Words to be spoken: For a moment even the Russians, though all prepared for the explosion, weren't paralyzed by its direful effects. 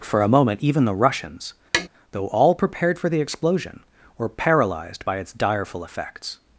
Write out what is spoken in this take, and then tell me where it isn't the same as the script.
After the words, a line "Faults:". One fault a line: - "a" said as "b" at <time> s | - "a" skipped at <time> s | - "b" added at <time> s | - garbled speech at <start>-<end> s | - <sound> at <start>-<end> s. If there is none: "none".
For a moment even the Russians, though all prepared for the explosion, were paralyzed by its direful effects.
Faults:
- tap at 1.7-1.9 s
- "weren't" said as "were" at 4.2 s